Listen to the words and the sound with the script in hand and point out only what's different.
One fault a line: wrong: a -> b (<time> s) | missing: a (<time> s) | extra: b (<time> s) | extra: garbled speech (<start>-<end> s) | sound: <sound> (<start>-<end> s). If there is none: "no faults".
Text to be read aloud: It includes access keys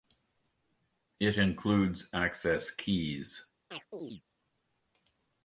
sound: chirp (3.7-4.2 s)